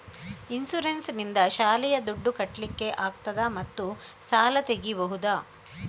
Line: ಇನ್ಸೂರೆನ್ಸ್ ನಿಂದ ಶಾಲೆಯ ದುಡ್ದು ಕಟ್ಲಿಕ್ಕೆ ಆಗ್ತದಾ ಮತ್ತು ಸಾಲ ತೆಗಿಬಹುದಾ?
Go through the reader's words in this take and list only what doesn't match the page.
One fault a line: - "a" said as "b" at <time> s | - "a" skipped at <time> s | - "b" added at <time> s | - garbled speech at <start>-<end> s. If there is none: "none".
none